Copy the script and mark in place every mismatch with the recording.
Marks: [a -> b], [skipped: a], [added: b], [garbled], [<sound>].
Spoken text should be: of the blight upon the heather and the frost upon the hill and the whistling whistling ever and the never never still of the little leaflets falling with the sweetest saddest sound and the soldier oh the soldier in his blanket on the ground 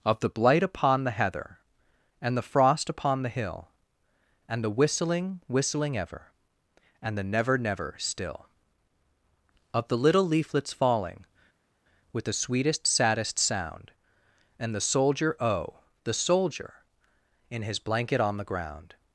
of the blight upon the heather and the frost upon the hill and the whistling whistling ever and the never never still of the little leaflets falling with the sweetest saddest sound and the soldier oh the soldier in his blanket on the ground